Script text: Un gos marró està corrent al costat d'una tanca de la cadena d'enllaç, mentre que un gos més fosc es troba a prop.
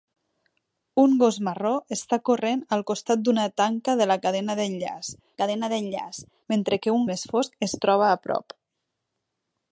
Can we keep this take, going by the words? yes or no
no